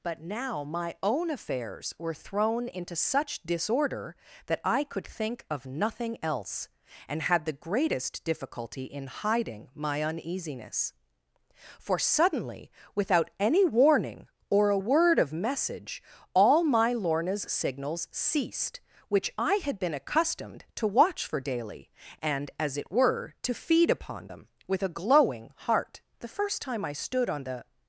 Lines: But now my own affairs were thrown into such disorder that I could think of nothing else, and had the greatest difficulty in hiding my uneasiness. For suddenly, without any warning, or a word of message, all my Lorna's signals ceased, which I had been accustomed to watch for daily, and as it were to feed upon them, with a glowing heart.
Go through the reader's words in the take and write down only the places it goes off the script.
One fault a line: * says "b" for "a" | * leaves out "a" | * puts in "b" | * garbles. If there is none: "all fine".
* puts in "The first time I stood on the"